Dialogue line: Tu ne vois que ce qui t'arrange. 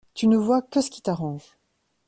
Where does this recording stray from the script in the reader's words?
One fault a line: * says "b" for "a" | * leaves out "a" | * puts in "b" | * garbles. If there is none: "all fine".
all fine